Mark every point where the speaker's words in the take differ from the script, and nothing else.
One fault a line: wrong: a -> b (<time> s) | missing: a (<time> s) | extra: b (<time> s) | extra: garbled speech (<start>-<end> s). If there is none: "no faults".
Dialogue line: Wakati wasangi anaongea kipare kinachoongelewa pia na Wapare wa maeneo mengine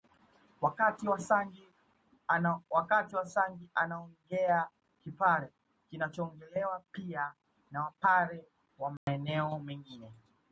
no faults